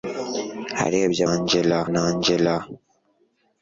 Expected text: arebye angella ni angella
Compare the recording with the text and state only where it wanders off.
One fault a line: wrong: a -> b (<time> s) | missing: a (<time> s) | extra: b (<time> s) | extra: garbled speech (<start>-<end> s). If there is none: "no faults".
no faults